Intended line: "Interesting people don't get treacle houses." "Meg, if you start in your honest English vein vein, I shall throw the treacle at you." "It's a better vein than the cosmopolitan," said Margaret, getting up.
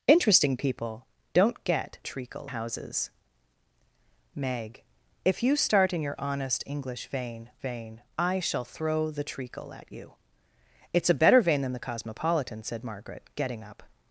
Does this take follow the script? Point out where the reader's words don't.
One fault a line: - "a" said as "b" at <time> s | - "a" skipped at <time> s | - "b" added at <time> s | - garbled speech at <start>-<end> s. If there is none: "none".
none